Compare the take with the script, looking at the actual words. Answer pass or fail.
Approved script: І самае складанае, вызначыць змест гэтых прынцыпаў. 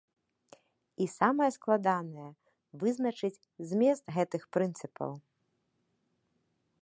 pass